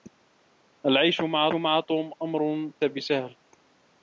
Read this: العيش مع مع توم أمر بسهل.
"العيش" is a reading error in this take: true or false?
false